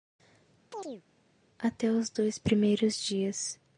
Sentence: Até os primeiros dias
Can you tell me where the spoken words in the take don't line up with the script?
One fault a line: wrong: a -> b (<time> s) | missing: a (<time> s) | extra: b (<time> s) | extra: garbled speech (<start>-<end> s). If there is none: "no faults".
extra: dois (2.1 s)